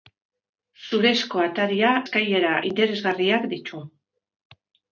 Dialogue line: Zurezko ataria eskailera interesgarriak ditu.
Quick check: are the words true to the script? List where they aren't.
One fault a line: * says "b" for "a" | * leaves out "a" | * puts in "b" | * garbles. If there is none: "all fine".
all fine